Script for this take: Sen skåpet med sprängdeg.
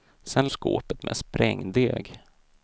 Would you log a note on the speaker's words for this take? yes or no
no